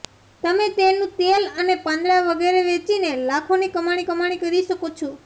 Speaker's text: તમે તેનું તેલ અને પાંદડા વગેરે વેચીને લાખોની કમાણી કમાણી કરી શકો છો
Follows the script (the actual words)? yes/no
yes